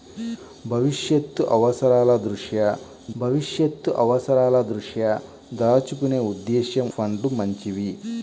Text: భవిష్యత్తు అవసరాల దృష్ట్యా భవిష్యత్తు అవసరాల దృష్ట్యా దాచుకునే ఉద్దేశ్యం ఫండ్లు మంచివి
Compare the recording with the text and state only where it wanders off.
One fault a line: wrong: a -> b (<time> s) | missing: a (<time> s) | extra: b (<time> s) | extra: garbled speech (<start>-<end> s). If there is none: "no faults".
no faults